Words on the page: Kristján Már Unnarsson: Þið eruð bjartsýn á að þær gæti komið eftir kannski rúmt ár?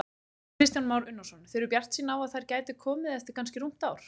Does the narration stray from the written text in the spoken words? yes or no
no